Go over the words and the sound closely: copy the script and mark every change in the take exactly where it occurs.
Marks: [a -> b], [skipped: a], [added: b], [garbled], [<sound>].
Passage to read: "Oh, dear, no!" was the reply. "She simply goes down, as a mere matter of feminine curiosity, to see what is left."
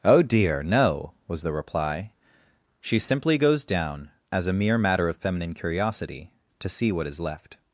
"Oh, dear, no!" was the reply. "She simply goes down, as a mere matter of feminine curiosity, to see what is left."